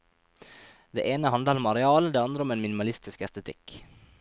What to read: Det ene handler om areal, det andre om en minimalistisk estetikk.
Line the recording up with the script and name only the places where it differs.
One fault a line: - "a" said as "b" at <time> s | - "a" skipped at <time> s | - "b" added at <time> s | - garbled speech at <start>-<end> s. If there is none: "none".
none